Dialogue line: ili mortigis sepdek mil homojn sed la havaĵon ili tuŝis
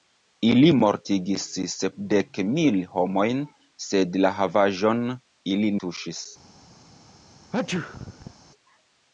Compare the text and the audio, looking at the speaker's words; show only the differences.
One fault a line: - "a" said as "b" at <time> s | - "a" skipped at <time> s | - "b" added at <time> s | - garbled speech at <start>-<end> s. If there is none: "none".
none